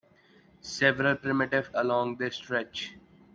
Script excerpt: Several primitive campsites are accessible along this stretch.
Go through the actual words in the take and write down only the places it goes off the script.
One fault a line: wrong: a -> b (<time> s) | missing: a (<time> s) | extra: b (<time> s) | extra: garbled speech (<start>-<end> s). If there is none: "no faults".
missing: campsites are accessible (1.8 s)